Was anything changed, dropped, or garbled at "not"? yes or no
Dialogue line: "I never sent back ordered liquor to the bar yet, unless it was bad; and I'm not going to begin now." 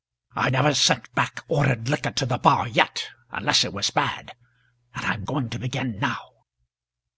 yes